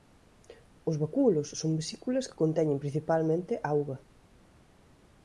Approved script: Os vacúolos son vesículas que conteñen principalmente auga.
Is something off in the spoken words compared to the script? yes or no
no